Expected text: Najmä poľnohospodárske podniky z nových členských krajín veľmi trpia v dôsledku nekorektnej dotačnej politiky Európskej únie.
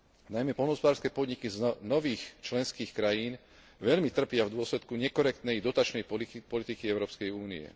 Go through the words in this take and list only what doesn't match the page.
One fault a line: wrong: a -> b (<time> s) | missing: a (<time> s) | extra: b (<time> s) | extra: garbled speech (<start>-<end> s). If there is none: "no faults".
no faults